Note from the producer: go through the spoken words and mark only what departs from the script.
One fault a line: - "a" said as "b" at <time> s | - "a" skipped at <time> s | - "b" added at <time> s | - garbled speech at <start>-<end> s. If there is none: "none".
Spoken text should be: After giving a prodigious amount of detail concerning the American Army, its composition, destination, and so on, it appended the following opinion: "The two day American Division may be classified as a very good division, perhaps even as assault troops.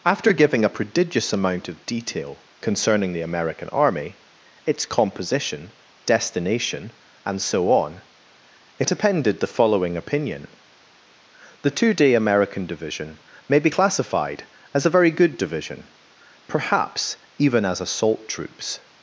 none